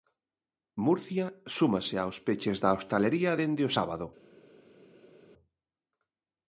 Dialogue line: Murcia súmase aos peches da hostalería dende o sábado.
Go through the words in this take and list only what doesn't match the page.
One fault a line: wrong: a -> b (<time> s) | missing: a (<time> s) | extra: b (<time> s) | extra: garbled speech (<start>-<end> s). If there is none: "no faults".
no faults